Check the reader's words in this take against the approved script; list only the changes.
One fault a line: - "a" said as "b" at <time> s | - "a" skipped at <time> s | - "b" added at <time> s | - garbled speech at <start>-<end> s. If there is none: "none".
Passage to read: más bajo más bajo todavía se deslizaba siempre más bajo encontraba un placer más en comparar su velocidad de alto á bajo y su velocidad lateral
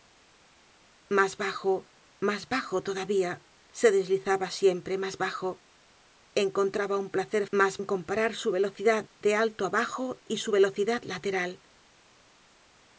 none